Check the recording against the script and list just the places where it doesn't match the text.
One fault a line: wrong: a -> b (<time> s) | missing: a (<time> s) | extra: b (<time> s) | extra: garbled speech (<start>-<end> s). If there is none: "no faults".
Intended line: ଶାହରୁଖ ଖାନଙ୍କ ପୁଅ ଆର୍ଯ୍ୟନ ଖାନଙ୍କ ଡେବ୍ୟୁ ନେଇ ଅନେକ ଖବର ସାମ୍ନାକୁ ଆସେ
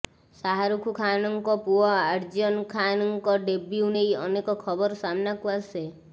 no faults